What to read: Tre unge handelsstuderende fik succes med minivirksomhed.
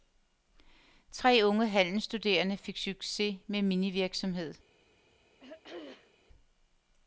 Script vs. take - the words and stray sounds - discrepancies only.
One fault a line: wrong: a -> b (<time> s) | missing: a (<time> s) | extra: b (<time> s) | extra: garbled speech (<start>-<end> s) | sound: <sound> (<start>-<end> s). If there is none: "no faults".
sound: throat clearing (5.4-6.1 s)